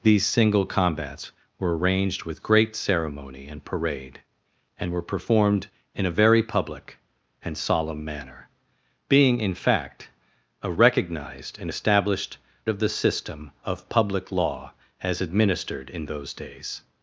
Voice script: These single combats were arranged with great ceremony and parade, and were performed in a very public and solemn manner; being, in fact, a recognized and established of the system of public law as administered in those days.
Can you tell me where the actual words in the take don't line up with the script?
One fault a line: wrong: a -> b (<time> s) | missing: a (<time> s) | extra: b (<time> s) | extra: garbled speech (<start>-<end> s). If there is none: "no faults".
no faults